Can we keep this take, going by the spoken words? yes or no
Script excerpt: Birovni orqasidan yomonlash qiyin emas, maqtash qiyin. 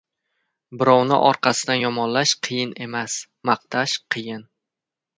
yes